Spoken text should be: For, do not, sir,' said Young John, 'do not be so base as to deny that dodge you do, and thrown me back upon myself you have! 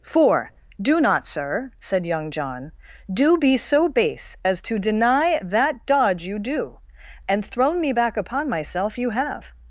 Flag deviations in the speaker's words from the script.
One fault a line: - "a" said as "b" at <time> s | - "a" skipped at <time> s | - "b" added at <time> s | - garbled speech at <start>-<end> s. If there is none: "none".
- "not" skipped at 3.4 s